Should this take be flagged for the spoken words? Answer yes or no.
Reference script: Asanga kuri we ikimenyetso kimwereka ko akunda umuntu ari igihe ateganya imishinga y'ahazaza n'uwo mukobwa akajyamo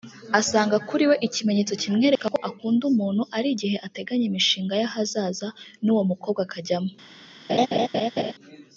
no